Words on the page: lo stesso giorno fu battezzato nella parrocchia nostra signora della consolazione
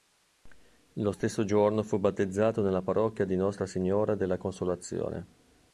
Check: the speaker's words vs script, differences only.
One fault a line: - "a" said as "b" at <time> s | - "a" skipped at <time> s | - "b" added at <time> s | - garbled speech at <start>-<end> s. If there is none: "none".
- "di" added at 3.3 s